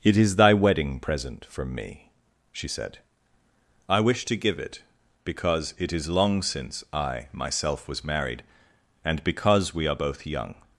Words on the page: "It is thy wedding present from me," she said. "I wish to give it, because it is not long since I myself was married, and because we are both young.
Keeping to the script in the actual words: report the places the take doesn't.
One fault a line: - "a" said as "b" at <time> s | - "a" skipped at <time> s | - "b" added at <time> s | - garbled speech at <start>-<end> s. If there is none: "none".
- "not" skipped at 6.1 s